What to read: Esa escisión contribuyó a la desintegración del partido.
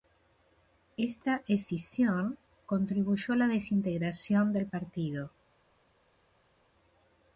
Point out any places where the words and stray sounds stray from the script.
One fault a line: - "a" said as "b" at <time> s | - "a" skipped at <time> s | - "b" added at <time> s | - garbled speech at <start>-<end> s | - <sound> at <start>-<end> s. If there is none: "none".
- "Esa" said as "Esta" at 1.0 s